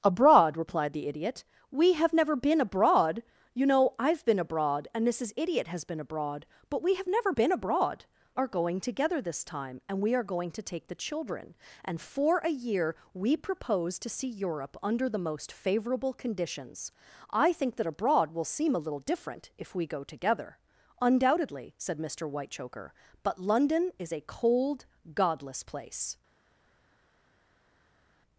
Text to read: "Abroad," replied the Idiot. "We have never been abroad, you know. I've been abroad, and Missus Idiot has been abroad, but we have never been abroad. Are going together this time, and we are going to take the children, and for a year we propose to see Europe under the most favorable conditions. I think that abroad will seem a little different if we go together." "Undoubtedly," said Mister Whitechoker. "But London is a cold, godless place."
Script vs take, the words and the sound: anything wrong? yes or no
no